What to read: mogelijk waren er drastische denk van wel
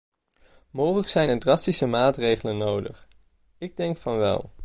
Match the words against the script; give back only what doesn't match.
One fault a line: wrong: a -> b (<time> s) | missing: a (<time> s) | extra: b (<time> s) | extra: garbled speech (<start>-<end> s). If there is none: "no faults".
wrong: waren -> zijn (1.1 s)
extra: maatregelen nodig ik (1.9 s)